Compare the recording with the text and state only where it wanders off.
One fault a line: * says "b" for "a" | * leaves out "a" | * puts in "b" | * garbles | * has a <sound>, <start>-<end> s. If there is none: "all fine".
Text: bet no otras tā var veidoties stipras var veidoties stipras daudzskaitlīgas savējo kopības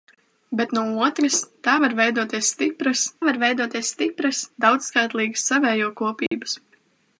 * has a dropout, 6.3-6.3 s